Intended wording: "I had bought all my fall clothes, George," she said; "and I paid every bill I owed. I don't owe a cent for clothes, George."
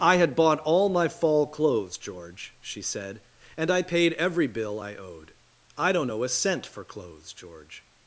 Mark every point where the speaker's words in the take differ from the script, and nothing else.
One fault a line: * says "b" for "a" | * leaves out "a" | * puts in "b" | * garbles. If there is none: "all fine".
all fine